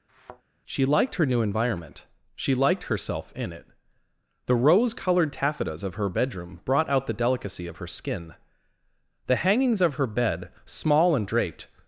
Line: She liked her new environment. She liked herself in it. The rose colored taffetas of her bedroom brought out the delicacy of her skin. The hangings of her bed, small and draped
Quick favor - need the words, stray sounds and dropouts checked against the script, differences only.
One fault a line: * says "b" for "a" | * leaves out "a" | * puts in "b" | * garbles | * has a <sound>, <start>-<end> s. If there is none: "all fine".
* has a thud, 0.1-0.4 s